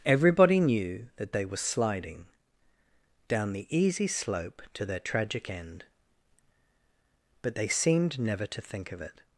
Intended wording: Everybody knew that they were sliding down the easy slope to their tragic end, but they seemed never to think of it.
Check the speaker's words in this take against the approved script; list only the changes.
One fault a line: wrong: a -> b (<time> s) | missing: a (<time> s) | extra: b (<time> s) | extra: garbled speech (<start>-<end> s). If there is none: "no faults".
no faults